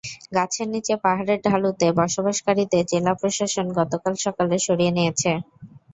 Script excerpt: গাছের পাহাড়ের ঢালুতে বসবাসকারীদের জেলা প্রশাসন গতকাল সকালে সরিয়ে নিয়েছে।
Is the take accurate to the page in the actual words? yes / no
no